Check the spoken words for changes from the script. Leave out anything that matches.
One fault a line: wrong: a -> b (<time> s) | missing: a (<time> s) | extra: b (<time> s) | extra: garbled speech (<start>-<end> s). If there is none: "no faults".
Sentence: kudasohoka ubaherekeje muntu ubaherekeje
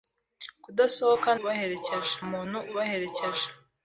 no faults